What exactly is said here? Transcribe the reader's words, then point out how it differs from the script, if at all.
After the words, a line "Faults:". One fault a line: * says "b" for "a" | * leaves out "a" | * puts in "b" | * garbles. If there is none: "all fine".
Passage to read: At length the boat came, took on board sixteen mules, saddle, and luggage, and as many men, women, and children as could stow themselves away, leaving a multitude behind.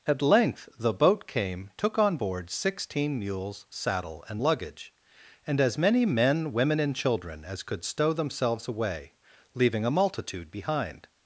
At length the boat came, took on board sixteen mules, saddle, and luggage, and as many men, women, and children as could stow themselves away, leaving a multitude behind.
Faults:
all fine